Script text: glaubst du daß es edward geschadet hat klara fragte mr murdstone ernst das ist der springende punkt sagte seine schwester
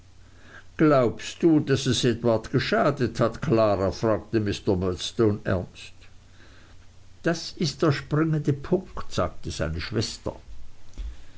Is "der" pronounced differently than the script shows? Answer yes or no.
no